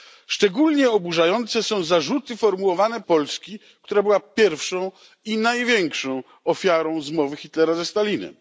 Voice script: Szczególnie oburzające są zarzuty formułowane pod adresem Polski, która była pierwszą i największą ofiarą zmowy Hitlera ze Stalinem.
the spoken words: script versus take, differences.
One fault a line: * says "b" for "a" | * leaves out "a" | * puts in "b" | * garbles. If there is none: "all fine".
* leaves out "pod adresem"